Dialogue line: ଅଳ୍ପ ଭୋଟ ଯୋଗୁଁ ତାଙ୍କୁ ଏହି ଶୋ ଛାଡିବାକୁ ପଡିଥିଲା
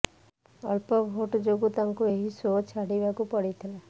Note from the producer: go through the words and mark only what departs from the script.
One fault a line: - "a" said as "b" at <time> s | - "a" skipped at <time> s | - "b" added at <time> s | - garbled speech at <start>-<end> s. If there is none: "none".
none